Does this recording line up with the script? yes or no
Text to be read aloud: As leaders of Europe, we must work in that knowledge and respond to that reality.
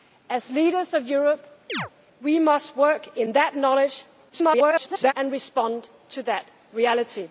no